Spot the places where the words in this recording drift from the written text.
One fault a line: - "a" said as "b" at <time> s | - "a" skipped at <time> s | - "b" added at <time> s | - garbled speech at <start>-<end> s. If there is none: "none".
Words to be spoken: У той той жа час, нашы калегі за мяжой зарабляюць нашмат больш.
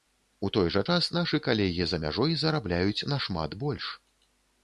- "той" skipped at 0.7 s